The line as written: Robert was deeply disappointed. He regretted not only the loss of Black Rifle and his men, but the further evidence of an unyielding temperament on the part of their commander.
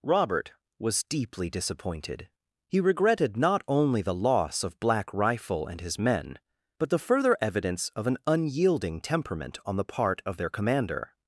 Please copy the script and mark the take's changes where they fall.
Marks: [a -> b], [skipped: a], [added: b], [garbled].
Robert was deeply disappointed. He regretted not only the loss of Black Rifle and his men, but the further evidence of an unyielding temperament on the part of their commander.